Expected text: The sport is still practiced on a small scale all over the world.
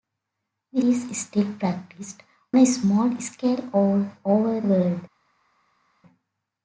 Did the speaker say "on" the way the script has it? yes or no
no